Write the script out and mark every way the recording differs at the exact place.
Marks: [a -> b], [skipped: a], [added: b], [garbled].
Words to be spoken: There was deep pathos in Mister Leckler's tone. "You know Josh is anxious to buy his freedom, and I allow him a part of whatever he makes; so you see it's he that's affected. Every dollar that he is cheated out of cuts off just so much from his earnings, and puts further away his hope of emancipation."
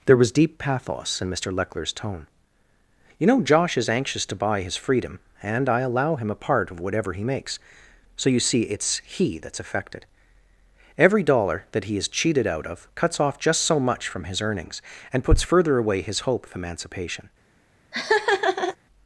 There was deep pathos in Mister Leckler's tone. "You know Josh is anxious to buy his freedom, and I allow him a part of whatever he makes; so you see it's he that's affected. Every dollar that he is cheated out of cuts off just so much from his earnings, and puts further away his hope of emancipation."